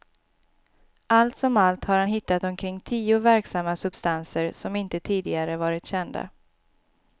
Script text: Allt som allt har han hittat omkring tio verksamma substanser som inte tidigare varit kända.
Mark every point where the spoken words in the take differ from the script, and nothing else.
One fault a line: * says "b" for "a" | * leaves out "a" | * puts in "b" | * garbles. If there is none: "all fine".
all fine